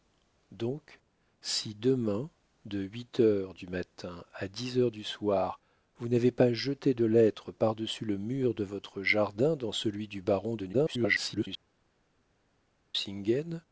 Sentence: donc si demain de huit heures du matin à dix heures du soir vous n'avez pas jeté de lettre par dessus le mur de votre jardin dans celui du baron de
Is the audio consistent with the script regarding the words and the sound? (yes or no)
no